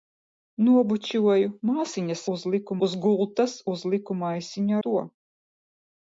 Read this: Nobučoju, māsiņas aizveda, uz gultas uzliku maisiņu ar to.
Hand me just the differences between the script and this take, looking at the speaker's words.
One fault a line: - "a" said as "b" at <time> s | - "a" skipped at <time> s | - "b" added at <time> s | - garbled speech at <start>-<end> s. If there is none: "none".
- "aizveda" said as "uzliku" at 2.3 s
- "ar" skipped at 4.8 s